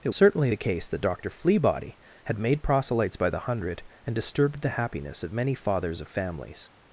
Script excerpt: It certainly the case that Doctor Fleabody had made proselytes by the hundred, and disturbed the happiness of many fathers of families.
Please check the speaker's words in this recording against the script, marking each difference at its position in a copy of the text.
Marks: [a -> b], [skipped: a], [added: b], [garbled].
It certainly the case that Doctor Fleabody had made proselytes by the hundred, and disturbed the happiness of many fathers of families.